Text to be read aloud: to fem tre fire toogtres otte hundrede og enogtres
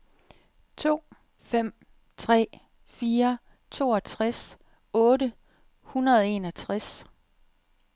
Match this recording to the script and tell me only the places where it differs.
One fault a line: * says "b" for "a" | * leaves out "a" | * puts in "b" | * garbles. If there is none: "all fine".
all fine